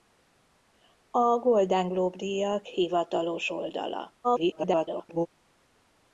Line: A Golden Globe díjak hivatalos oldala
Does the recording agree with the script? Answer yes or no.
no